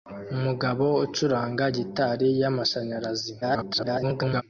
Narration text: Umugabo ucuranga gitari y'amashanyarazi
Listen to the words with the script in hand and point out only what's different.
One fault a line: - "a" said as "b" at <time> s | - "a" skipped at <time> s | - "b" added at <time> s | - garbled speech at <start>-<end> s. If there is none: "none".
- garbled speech at 3.4-4.4 s